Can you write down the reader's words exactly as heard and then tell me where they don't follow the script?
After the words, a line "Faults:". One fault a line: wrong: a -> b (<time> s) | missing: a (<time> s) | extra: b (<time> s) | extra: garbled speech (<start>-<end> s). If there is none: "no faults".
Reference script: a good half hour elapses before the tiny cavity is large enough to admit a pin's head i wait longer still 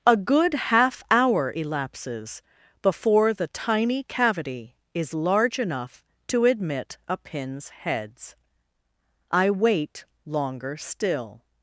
a good half hour elapses before the tiny cavity is large enough to admit a pin's heads i wait longer still
Faults:
wrong: head -> heads (7.7 s)